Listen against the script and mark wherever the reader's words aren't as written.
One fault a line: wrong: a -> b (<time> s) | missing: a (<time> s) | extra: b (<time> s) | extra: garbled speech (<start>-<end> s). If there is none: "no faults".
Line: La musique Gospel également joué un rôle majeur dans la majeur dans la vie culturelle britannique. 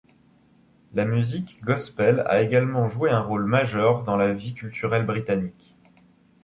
extra: a (2.2 s)
missing: majeur dans la (4.3 s)